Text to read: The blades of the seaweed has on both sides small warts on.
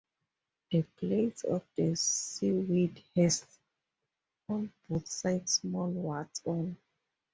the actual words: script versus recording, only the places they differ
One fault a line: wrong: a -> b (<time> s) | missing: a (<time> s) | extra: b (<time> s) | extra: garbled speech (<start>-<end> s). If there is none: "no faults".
no faults